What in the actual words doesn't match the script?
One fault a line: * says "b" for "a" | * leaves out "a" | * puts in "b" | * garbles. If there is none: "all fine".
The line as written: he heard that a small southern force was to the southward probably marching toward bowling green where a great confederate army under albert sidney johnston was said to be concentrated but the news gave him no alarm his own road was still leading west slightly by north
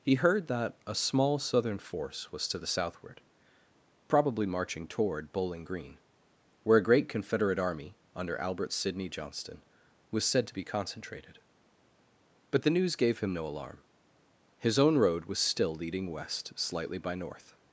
all fine